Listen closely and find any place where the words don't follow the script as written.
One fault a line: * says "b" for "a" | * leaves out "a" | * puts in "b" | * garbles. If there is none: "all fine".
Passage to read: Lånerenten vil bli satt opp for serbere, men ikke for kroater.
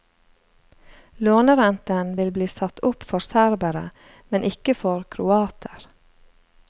all fine